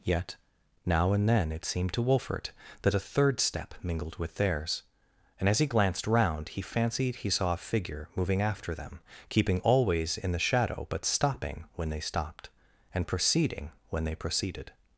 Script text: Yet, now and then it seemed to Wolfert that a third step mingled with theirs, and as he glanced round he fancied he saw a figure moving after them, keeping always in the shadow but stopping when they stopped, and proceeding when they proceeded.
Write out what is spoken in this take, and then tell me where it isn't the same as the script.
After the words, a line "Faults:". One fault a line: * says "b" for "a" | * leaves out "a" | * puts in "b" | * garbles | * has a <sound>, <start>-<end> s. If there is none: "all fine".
Yet, now and then it seemed to Wolfert that a third step mingled with theirs, and as he glanced round he fancied he saw a figure moving after them, keeping always in the shadow but stopping when they stopped, and proceeding when they proceeded.
Faults:
all fine